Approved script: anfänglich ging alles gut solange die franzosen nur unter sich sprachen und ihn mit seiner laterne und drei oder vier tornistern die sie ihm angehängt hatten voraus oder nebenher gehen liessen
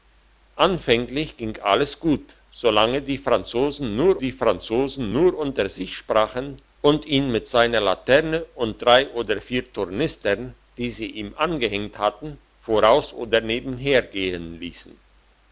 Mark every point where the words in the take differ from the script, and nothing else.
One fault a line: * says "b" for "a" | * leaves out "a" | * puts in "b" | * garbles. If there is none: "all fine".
* puts in "die franzosen nur"